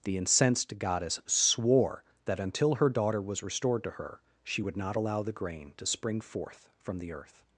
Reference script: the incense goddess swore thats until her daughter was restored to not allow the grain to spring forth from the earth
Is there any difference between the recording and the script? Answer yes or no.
yes